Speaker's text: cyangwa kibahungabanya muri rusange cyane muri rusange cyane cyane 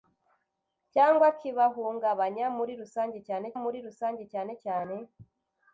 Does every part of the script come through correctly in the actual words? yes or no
yes